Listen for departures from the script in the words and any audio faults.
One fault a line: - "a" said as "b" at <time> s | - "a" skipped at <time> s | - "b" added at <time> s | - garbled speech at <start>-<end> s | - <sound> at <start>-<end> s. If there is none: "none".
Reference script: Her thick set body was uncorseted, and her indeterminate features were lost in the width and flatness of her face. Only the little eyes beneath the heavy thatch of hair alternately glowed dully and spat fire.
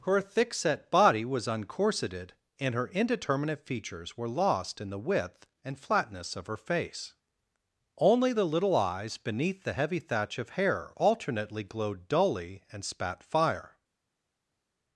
none